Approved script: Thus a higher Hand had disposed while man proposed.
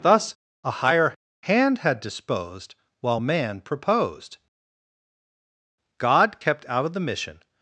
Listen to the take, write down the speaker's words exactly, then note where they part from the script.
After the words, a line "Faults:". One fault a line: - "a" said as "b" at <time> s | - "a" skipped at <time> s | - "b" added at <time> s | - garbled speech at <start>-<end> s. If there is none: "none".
Thus a higher Hand had disposed while man proposed. God kept out of the mission
Faults:
- "God kept out of the mission" added at 6.0 s